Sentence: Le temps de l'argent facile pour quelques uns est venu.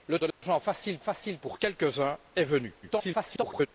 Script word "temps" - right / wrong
wrong